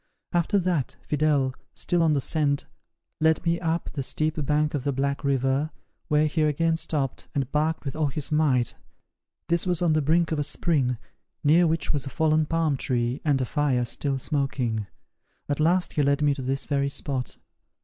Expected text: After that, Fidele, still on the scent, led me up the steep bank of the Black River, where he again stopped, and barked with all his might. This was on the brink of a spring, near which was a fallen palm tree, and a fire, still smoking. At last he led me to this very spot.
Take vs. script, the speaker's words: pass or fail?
pass